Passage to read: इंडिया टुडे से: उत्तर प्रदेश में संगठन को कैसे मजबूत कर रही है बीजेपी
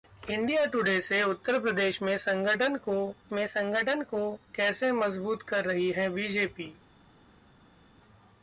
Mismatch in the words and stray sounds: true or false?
true